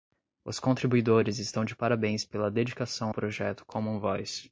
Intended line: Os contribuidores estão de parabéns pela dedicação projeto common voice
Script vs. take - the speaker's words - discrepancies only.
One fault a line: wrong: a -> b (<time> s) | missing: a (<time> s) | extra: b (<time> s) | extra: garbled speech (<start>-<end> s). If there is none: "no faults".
no faults